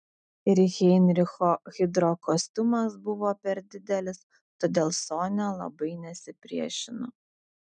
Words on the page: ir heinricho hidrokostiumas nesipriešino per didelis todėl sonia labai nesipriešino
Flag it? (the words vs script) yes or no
yes